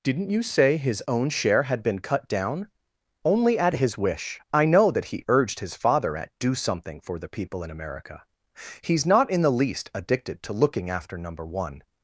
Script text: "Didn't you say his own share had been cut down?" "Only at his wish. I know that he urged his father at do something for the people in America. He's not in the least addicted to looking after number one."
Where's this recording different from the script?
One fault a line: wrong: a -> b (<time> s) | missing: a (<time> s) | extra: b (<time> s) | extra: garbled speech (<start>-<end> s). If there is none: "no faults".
no faults